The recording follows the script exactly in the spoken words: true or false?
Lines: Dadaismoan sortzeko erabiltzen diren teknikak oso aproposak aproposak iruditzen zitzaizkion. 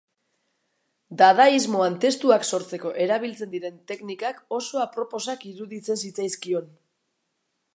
false